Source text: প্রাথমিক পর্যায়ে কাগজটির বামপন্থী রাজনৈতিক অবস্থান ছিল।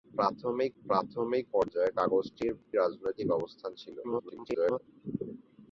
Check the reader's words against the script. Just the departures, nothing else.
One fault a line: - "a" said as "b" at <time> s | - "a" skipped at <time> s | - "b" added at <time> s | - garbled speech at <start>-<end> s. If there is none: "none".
- "প্রাথমিক" added at 0.8 s
- "বামপন্থী" skipped at 2.5 s
- garbled speech at 4.0-4.8 s